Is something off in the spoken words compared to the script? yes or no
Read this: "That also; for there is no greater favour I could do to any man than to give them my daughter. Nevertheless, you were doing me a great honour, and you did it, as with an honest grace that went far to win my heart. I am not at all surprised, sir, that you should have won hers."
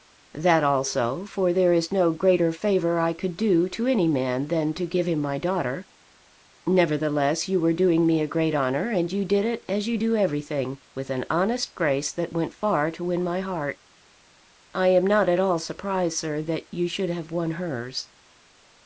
yes